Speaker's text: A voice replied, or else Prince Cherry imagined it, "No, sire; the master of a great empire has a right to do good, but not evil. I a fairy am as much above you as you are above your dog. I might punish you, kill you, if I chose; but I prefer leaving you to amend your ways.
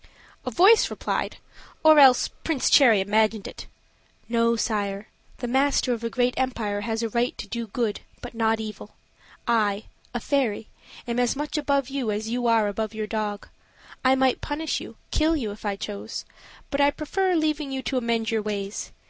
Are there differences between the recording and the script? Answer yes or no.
no